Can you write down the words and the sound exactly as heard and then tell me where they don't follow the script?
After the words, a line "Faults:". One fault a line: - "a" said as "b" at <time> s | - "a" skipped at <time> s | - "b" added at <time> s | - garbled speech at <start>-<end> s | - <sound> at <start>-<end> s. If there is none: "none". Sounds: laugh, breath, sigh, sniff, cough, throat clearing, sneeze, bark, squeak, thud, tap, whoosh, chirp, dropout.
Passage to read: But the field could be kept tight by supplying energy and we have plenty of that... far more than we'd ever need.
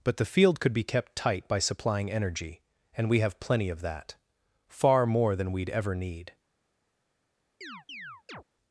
But the field could be kept tight by supplying energy and we have plenty of that... far more than we'd ever need.
Faults:
- chirp at 7.6-8.4 s